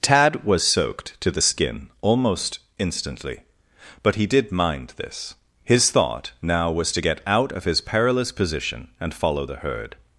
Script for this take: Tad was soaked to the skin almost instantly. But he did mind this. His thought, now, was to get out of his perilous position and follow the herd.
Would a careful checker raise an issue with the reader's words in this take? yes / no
no